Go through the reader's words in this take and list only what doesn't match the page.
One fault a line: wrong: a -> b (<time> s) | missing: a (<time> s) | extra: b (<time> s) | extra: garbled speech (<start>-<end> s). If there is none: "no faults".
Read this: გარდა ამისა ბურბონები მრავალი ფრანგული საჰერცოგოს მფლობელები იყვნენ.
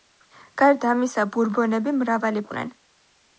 missing: ფრანგული საჰერცოგოს მფლობელები (2.5 s)